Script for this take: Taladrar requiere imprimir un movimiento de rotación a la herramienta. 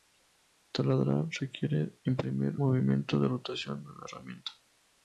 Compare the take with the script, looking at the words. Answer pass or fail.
fail